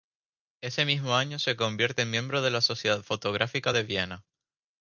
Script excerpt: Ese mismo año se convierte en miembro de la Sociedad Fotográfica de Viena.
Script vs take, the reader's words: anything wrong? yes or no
no